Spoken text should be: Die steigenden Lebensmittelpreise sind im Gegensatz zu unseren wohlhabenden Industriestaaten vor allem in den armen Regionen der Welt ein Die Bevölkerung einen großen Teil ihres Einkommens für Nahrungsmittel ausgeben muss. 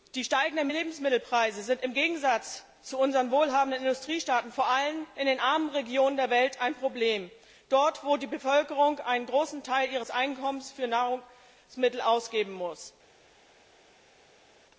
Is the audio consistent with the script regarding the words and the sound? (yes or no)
no